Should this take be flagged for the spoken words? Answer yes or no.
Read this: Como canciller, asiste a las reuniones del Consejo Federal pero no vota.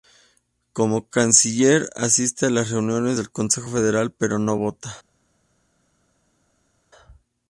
no